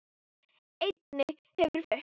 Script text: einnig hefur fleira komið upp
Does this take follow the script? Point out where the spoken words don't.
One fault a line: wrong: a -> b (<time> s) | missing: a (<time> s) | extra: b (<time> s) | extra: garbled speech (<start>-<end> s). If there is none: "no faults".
missing: fleira komið (1.8 s)